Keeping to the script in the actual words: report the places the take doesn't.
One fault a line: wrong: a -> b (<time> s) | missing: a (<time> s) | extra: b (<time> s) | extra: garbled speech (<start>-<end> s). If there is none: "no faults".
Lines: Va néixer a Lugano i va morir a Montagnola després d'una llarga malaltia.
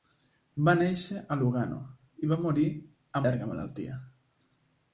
missing: Montagnola després d'una (3.2 s)